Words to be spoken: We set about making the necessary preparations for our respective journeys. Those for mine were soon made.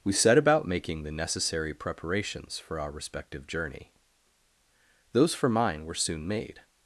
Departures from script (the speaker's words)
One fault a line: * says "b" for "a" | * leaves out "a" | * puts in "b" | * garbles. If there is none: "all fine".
* says "journey" for "journeys"